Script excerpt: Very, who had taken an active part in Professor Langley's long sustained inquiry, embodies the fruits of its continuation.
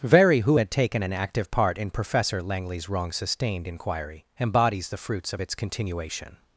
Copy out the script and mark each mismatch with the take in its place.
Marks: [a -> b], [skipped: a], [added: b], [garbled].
Very, who had taken an active part in Professor Langley's [long -> wrong] sustained inquiry, embodies the fruits of its continuation.